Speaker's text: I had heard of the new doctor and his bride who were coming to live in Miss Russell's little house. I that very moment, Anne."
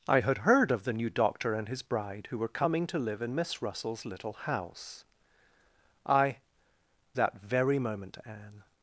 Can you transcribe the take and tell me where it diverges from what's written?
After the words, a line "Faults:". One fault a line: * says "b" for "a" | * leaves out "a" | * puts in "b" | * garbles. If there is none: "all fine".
I had heard of the new doctor and his bride who were coming to live in Miss Russell's little house. I that very moment, Anne."
Faults:
all fine